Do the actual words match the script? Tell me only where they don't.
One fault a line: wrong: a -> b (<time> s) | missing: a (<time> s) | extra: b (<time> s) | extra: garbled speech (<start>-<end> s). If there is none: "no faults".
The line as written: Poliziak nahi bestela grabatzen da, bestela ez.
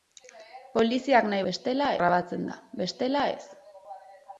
no faults